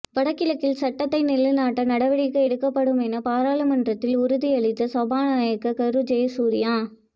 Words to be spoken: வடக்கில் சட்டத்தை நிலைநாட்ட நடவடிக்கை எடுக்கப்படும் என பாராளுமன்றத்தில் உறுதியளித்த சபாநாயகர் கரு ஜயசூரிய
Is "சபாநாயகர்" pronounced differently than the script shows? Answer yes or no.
no